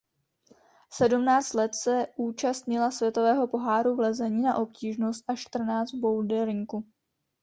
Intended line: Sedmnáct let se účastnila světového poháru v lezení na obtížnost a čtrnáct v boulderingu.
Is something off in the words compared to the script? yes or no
no